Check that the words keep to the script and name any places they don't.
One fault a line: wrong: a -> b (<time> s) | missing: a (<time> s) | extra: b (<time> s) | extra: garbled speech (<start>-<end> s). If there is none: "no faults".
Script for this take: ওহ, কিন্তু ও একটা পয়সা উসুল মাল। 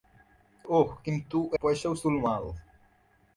missing: একটা (1.5 s)